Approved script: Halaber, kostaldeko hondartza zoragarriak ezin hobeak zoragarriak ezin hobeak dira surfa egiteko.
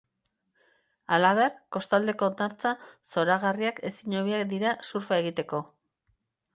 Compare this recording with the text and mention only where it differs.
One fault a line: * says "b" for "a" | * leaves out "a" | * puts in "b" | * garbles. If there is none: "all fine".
* leaves out "zoragarriak ezin hobeak"